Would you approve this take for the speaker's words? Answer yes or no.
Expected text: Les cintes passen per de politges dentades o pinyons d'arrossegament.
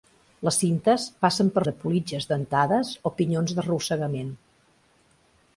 yes